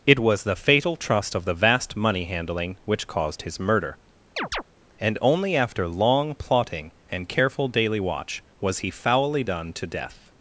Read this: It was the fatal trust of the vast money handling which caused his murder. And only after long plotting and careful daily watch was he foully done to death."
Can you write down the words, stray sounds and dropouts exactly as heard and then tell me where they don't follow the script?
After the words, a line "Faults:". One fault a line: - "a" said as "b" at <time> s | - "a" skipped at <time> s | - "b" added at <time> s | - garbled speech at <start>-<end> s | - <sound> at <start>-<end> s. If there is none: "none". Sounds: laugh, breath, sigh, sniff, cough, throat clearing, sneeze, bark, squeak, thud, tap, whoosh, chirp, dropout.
It was the fatal trust of the vast money handling which caused his murder. And only after long plotting and careful daily watch was he foully done to death."
Faults:
- chirp at 4.4-4.6 s